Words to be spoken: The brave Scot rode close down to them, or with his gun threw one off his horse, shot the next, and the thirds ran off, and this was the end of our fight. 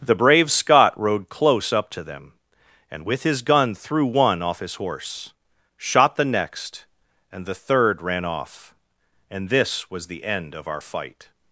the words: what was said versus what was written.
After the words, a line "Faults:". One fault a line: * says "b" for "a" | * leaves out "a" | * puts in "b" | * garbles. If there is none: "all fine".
The brave Scot rode close up to them, and with his gun threw one off his horse, shot the next, and the third ran off, and this was the end of our fight.
Faults:
* says "up" for "down"
* says "and" for "or"
* says "third" for "thirds"